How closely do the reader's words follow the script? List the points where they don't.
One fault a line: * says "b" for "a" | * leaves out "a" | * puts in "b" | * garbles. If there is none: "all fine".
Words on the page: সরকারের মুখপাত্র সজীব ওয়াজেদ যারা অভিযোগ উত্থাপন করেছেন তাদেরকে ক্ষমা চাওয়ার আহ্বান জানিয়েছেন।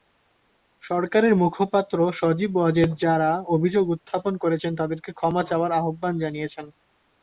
all fine